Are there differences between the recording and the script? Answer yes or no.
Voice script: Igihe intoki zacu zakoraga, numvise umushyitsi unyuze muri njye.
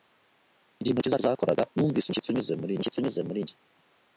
yes